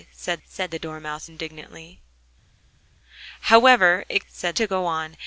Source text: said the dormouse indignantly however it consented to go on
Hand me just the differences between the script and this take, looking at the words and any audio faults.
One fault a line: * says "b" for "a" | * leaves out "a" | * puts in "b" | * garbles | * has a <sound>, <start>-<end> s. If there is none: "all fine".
* puts in "said"
* says "said" for "consented"